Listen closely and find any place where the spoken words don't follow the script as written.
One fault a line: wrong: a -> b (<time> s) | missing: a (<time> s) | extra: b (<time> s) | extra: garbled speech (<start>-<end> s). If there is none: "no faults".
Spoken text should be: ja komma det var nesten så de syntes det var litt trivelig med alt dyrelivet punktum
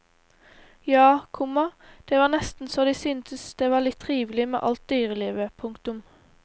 no faults